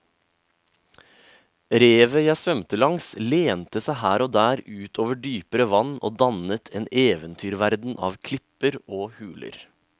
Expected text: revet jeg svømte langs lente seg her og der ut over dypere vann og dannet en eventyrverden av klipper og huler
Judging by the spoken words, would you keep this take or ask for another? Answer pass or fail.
pass